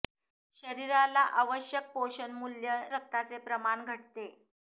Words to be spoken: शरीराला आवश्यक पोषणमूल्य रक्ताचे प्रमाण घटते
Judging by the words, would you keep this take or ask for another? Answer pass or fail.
pass